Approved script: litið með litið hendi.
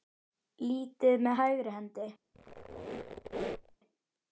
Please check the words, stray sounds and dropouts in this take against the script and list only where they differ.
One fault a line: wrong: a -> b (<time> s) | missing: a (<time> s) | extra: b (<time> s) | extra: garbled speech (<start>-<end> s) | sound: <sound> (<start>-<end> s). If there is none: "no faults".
wrong: litið -> hægri (1.4 s)
sound: squeak (2.3-3.8 s)